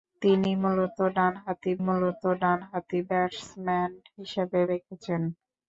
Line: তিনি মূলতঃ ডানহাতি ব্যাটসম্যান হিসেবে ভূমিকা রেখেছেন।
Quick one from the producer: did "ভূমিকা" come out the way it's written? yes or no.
no